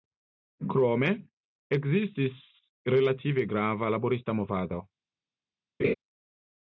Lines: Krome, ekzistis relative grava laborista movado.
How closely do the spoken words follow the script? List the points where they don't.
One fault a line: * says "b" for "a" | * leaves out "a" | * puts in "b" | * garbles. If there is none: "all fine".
all fine